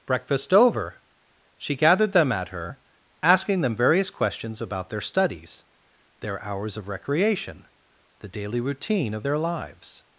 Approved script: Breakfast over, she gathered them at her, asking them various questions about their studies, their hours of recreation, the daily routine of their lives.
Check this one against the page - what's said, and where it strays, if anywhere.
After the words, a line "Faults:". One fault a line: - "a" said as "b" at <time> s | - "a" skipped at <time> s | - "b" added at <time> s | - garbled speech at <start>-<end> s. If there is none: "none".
Breakfast over, she gathered them at her, asking them various questions about their studies, their hours of recreation, the daily routine of their lives.
Faults:
none